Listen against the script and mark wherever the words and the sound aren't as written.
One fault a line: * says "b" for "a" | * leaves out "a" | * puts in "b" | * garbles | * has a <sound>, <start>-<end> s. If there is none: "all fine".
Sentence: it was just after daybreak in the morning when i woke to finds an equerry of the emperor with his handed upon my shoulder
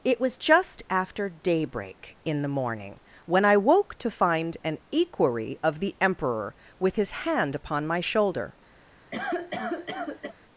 * says "find" for "finds"
* says "hand" for "handed"
* has a cough, 9.1-10.3 s